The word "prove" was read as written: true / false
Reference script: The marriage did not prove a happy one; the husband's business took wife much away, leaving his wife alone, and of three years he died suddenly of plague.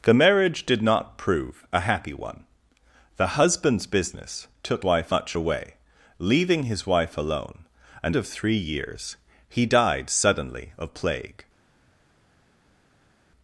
true